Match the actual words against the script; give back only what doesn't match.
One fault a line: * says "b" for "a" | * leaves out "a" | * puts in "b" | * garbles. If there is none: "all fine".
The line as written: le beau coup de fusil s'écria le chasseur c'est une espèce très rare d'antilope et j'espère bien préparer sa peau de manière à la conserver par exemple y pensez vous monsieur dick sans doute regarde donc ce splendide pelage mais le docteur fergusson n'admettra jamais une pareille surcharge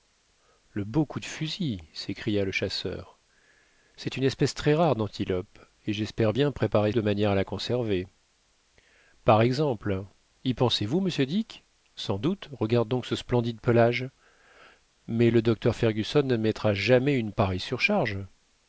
* leaves out "sa peau"